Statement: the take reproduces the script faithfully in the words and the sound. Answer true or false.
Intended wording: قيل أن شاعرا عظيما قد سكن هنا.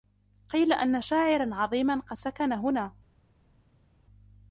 true